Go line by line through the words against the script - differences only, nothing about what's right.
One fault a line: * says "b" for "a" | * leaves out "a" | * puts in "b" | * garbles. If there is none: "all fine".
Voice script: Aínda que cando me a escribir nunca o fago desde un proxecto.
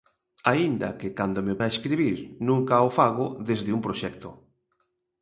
all fine